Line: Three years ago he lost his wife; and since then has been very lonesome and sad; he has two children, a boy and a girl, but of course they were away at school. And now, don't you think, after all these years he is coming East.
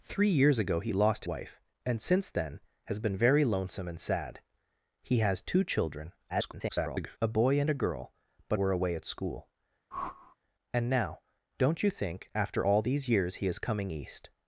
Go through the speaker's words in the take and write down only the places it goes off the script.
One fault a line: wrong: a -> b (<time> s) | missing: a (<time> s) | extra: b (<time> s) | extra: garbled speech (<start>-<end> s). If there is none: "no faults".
missing: his (1.2 s)
extra: garbled speech (6.3-7.2 s)
missing: of course they (8.6 s)